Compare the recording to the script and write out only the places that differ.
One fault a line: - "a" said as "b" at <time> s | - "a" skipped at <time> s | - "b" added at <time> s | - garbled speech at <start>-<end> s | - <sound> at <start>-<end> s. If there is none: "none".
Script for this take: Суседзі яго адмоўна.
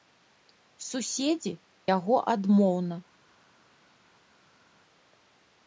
none